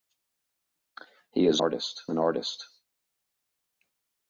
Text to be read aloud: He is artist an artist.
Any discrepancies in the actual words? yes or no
no